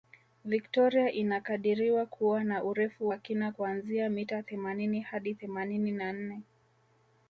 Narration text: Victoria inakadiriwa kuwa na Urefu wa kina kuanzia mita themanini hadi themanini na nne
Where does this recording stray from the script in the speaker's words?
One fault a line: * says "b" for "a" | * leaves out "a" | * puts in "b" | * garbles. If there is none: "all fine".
all fine